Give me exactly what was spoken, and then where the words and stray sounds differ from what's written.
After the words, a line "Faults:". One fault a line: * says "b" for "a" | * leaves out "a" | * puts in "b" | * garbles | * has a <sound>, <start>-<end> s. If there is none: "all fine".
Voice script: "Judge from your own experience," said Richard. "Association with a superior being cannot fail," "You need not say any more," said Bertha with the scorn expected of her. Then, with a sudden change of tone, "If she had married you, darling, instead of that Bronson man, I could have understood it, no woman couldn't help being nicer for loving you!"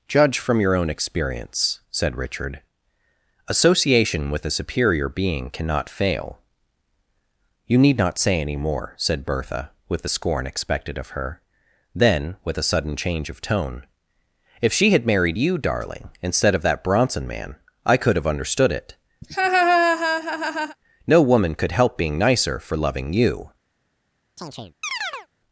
"Judge from your own experience," said Richard. "Association with a superior being cannot fail," "You need not say any more," said Bertha with the scorn expected of her. Then, with a sudden change of tone, "If she had married you, darling, instead of that Bronson man, I could have understood it, no woman could help being nicer for loving you!"
Faults:
* has a laugh, 19.2-20.8 s
* says "could" for "couldn't"
* has a chirp, 24.4-25.3 s